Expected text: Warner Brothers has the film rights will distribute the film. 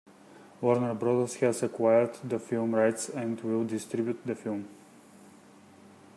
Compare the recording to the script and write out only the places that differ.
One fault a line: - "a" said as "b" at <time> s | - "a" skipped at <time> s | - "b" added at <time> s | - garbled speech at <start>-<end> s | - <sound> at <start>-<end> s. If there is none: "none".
- "acquired" added at 1.6 s
- "and" added at 3.1 s